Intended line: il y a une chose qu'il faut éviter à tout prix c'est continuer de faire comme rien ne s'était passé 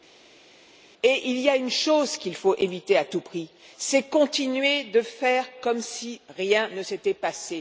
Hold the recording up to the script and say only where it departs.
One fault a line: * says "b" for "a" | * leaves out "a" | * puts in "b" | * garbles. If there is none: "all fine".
* puts in "si"